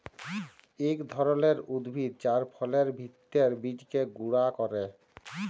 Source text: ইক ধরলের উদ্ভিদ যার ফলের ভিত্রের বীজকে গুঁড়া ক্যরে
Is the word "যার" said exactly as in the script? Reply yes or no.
yes